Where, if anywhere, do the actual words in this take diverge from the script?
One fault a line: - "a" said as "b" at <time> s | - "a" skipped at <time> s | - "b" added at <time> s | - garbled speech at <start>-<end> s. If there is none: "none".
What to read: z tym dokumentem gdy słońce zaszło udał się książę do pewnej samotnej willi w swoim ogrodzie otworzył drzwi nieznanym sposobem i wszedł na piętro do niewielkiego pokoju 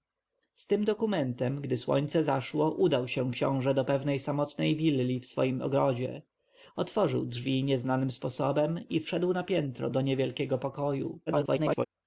- garbled speech at 11.3-11.9 s